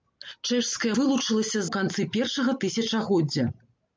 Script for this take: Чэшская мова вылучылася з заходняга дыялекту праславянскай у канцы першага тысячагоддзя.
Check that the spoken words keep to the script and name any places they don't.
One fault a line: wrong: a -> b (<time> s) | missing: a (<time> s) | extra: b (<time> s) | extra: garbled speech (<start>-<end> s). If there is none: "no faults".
missing: мова (0.9 s)
missing: заходняга дыялекту праславянскай (1.6 s)